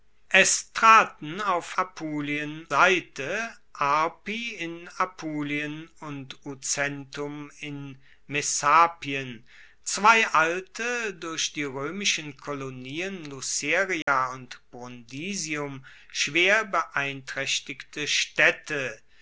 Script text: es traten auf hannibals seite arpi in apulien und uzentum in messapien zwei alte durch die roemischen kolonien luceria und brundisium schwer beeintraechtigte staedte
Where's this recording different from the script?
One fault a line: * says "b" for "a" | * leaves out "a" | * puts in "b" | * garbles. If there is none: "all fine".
* says "apulien" for "hannibals"